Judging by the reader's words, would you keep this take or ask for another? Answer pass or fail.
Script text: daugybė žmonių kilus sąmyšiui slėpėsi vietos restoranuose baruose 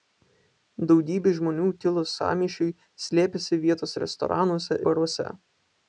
pass